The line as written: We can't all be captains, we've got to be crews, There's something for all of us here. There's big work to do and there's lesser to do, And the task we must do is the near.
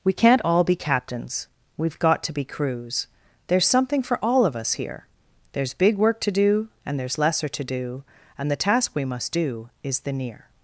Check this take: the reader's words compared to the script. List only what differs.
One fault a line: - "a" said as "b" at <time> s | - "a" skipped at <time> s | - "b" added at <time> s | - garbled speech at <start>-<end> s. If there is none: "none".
none